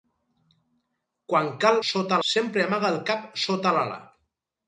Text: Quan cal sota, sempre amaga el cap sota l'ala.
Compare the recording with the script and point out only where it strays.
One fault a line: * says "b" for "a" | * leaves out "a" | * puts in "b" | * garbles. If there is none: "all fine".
all fine